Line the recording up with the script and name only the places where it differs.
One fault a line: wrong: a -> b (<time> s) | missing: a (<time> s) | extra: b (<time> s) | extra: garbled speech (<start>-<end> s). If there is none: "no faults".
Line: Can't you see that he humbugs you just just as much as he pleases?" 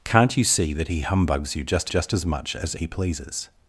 no faults